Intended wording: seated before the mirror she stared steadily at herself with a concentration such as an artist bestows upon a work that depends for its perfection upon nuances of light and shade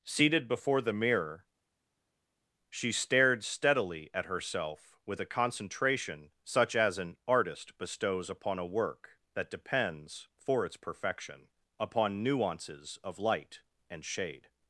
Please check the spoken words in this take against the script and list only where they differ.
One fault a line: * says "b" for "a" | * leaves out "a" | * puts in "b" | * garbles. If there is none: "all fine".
all fine